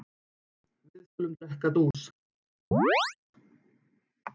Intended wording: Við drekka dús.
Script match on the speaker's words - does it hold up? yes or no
no